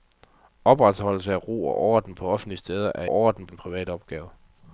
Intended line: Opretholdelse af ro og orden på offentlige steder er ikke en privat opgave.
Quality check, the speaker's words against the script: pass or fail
fail